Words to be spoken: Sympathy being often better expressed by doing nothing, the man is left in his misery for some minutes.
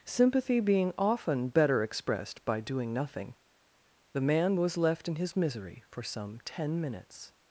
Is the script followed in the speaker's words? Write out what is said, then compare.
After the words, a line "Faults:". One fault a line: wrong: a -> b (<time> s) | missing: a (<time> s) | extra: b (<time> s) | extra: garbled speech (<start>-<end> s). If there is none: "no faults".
Sympathy being often better expressed by doing nothing, the man was left in his misery for some ten minutes.
Faults:
wrong: is -> was (4.5 s)
extra: ten (6.4 s)